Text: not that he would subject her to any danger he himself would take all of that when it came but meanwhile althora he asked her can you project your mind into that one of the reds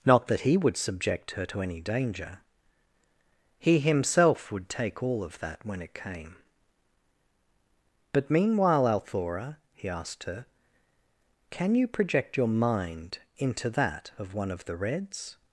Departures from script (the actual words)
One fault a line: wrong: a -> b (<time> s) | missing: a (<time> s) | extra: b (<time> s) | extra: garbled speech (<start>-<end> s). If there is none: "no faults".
extra: of (14.2 s)